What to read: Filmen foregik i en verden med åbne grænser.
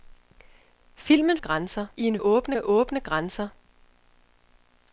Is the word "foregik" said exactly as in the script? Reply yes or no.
no